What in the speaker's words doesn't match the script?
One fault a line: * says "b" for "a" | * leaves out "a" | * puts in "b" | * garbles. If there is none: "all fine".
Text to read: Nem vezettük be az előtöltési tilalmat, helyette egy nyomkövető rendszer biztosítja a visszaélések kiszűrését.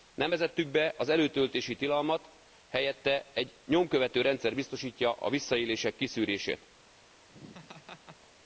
all fine